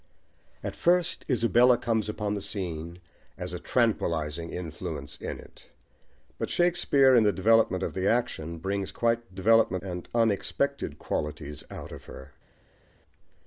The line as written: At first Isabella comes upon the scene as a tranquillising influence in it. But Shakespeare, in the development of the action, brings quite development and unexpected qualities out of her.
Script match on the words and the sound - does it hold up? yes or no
yes